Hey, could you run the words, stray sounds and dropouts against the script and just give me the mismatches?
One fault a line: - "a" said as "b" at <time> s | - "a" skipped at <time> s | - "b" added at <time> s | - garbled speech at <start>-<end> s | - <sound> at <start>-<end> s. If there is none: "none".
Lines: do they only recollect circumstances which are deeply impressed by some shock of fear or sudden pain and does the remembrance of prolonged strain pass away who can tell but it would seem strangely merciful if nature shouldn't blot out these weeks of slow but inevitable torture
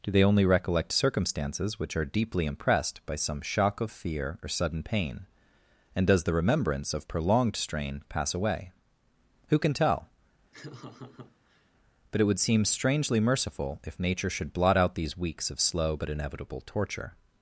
- laugh at 10.5-11.7 s
- "shouldn't" said as "should" at 14.3 s